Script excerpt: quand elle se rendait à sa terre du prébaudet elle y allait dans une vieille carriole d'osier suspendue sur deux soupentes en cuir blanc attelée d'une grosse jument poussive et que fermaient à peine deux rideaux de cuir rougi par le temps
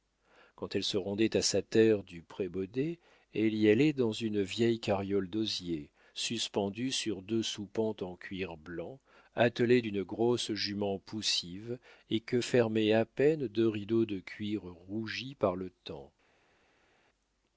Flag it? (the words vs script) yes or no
no